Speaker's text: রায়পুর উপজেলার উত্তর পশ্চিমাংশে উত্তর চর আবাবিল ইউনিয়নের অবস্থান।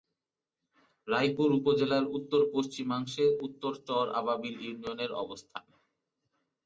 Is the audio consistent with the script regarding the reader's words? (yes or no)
yes